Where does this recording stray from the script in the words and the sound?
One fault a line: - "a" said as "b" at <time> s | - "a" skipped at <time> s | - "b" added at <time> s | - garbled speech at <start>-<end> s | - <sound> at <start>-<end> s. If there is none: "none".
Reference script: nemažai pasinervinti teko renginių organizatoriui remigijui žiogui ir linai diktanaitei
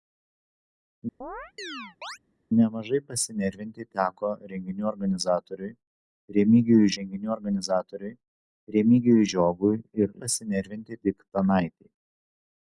- chirp at 1.2-2.2 s
- "renginių organizatoriui remigijui" added at 7.0 s
- "linai" said as "pasinervinti" at 10.2 s